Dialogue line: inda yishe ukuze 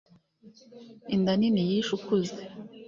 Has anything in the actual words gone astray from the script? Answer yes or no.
yes